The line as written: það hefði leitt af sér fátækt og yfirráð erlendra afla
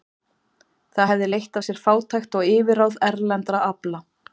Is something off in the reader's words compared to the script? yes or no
no